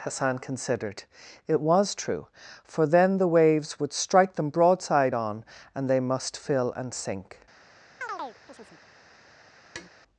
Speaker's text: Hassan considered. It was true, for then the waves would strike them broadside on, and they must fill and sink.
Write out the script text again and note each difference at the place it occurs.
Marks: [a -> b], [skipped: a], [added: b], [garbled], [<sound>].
Hassan considered. It was true, for then the waves would strike them broadside on, and they must fill and sink. [chirp] [tap]